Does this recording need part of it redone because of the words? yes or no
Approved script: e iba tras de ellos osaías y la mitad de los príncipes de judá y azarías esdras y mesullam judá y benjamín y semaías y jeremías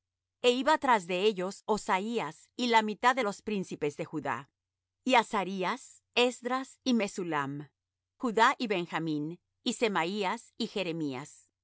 no